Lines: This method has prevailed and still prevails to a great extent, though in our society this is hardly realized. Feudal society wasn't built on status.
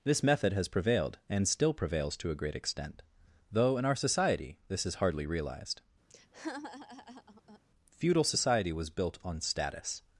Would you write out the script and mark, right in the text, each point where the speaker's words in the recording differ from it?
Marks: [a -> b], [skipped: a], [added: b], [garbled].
This method has prevailed and still prevails to a great extent, though in our society this is hardly realized. Feudal society [wasn't -> was] built on status.